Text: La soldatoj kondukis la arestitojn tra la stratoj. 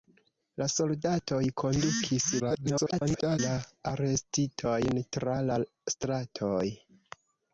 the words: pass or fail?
fail